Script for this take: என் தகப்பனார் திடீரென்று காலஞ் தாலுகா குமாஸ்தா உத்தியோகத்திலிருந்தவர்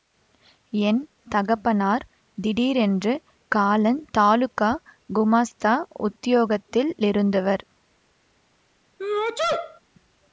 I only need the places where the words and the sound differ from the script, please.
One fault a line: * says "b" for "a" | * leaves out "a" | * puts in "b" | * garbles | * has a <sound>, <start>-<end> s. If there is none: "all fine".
* has a sneeze, 9.0-9.8 s